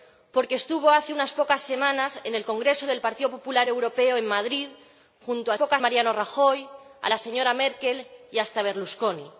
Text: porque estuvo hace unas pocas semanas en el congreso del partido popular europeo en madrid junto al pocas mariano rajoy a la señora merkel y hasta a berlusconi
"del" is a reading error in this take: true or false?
false